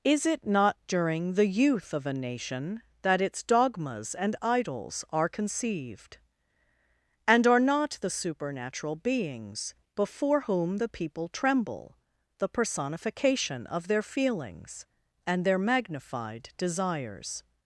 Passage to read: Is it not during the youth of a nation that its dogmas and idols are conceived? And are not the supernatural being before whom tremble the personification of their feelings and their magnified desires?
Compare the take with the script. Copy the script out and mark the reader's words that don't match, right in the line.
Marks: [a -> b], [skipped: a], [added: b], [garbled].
Is it not during the youth of a nation that its dogmas and idols are conceived? And are not the supernatural [being -> beings] before whom [added: the people] tremble the personification of their feelings and their magnified desires?